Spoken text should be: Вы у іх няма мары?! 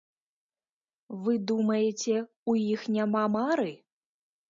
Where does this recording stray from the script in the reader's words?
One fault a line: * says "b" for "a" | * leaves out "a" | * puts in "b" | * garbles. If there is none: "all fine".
* puts in "думаеце"